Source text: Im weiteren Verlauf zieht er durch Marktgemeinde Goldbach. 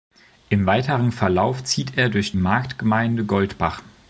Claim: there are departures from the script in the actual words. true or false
false